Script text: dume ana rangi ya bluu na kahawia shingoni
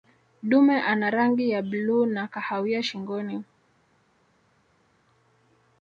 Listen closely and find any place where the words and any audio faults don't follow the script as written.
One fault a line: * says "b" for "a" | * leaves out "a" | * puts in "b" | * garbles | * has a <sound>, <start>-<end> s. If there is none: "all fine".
all fine